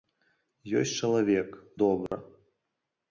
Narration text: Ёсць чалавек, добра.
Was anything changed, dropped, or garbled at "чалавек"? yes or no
no